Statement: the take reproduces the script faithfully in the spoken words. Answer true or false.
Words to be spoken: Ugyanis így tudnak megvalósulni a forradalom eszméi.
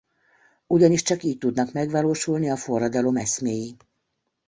false